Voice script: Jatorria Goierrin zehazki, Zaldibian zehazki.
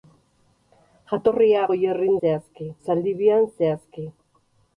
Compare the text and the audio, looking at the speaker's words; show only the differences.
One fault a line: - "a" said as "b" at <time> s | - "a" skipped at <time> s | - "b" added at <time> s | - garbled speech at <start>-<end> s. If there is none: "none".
none